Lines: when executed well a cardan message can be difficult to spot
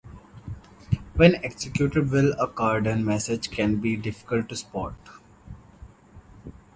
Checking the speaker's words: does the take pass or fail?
pass